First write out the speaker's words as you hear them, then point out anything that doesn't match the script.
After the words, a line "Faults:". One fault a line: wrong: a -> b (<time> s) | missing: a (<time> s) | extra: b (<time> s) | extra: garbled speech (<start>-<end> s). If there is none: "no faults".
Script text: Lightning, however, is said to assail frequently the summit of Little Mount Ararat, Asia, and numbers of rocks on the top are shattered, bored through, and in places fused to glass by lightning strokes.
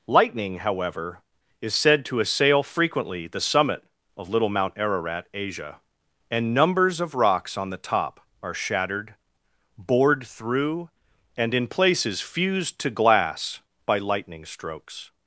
Lightning, however, is said to assail frequently the summit of Little Mount Ararat, Asia, and numbers of rocks on the top are shattered, bored through, and in places fused to glass by lightning strokes.
Faults:
no faults